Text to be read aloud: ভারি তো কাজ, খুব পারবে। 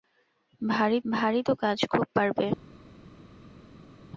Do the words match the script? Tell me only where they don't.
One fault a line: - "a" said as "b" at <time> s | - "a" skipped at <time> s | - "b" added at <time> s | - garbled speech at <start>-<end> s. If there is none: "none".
- "ভারি" added at 1.0 s